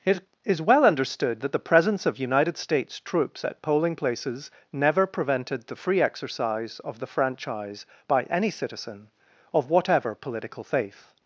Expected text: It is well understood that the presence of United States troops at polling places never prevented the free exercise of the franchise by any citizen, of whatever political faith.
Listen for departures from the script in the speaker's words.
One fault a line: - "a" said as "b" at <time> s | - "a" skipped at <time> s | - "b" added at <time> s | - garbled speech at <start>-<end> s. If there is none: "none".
none